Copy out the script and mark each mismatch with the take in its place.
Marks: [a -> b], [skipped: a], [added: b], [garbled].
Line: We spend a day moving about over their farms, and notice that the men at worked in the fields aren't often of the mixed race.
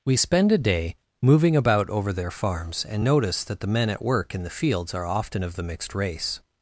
We spend a day moving about over their farms, and notice that the men at [worked -> work] in the fields [aren't -> are] often of the mixed race.